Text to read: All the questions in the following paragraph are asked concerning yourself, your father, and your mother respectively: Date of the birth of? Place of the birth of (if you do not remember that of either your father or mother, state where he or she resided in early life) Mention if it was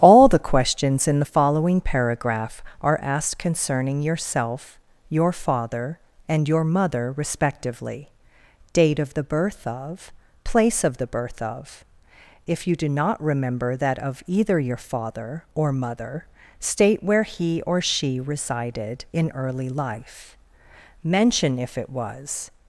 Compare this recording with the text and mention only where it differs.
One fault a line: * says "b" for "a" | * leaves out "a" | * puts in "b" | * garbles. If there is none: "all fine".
all fine